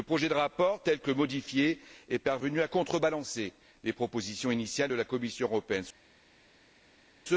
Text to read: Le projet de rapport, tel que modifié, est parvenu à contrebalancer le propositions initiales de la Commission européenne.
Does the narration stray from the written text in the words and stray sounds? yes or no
yes